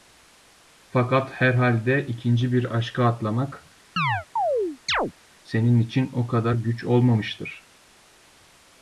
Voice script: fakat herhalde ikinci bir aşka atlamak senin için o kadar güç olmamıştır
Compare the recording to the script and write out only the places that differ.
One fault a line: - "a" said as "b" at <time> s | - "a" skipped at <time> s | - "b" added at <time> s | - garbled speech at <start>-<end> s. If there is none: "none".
none